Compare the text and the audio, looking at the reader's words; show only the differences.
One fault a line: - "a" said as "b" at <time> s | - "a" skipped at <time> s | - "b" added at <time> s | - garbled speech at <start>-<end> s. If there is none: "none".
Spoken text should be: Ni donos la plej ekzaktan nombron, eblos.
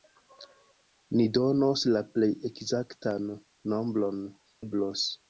none